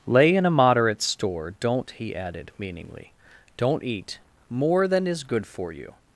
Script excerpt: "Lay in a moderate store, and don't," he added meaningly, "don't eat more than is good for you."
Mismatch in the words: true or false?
true